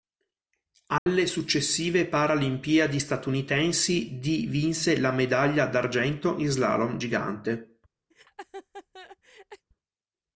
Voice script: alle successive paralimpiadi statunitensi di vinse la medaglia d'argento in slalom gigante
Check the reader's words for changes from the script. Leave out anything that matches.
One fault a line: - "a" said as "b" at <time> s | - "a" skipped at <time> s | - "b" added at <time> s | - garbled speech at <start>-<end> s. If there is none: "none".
none